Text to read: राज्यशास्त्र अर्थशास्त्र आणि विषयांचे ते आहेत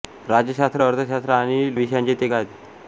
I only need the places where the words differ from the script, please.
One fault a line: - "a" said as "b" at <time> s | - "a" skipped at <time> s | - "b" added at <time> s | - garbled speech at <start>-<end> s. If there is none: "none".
none